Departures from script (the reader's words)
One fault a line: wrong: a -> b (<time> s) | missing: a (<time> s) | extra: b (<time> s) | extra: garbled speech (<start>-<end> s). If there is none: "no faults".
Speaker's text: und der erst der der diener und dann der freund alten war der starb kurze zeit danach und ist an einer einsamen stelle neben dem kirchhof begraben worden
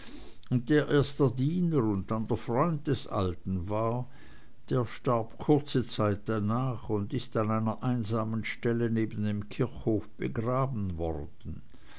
missing: der (1.3 s)
extra: des (2.9 s)